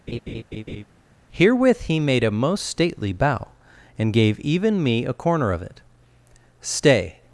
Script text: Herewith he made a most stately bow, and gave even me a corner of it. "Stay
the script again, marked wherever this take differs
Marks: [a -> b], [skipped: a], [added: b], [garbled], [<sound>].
[laugh] Herewith he made a most stately bow, and gave even me a corner of it. "Stay